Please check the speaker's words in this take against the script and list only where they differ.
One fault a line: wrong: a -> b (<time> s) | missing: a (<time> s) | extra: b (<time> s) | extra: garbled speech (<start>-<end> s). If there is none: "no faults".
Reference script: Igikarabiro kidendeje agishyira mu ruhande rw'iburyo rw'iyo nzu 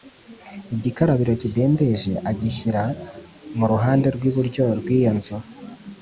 no faults